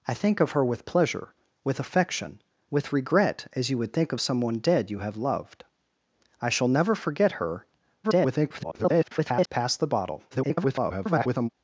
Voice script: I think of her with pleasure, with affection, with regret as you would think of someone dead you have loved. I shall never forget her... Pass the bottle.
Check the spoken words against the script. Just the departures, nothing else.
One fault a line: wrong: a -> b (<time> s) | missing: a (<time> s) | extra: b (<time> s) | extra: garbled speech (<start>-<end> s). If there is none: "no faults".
extra: garbled speech (8.0-9.5 s)
extra: garbled speech (10.3-11.5 s)